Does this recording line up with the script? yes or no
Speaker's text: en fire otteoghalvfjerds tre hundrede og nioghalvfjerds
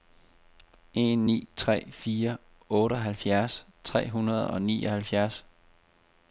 no